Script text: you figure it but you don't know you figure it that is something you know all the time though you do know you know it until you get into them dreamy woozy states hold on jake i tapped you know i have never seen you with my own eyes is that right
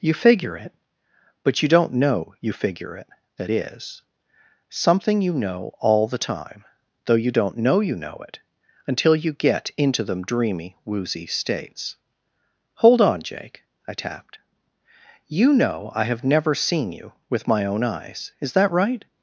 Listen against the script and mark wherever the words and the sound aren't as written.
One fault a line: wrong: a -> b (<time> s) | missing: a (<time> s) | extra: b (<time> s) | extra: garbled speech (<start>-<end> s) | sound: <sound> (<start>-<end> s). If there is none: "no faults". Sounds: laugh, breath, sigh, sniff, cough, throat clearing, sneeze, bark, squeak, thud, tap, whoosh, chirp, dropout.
wrong: do -> don't (7.3 s)